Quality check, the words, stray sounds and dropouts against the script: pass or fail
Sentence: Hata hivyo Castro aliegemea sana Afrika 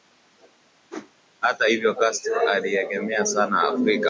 fail